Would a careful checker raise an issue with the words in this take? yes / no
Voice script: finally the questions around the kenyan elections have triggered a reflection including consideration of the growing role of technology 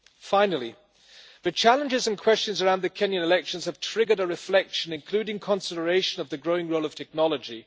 yes